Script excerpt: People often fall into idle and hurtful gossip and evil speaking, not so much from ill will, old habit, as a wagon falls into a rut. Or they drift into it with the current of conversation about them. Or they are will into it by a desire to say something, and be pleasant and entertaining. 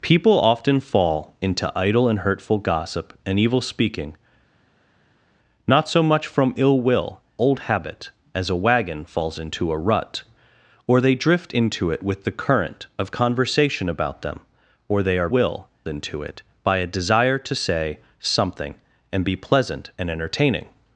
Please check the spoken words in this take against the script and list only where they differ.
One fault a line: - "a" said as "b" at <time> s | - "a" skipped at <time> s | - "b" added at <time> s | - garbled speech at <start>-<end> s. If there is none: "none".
none